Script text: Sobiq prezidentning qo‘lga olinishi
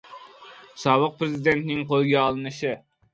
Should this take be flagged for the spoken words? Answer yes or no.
no